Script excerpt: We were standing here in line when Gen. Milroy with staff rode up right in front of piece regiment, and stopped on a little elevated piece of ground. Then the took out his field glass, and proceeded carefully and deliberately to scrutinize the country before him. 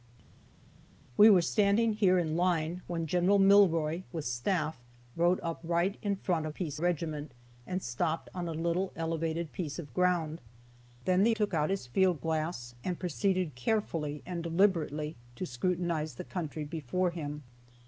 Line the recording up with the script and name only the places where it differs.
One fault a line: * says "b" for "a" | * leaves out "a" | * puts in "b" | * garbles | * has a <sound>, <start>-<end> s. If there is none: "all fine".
all fine